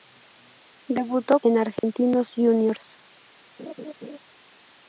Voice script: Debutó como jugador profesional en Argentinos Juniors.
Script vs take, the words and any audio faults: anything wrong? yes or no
yes